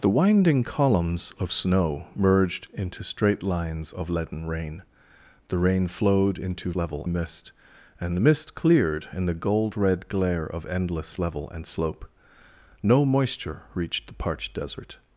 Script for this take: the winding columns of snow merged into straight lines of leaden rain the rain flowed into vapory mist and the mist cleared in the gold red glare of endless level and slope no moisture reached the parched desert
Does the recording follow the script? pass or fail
fail